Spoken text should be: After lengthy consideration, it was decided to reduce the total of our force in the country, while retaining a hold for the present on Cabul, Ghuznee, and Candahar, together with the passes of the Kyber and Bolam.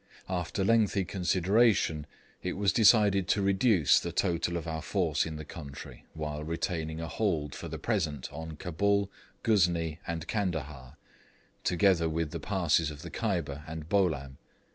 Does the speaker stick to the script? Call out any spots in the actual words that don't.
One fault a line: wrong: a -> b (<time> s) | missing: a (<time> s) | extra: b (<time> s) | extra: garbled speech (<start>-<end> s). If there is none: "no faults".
no faults